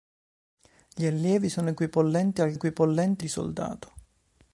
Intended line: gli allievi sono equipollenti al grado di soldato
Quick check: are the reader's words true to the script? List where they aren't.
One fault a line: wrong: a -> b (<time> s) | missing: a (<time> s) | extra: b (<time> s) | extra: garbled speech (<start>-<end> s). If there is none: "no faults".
wrong: grado -> equipollenti (2.5 s)